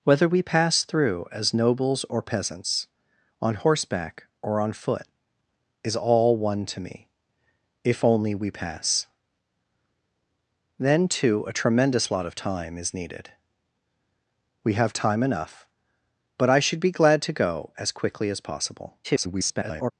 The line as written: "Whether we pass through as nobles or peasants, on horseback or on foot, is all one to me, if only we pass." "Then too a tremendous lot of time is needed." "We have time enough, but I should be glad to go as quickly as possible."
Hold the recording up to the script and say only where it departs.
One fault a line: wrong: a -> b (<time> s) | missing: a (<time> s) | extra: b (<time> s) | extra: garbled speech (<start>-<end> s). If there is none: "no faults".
extra: garbled speech (19.0-19.9 s)